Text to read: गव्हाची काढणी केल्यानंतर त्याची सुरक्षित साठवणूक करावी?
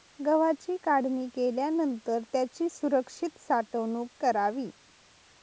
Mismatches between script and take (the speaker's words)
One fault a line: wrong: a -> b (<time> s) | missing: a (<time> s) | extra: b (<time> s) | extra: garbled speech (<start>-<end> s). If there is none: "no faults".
no faults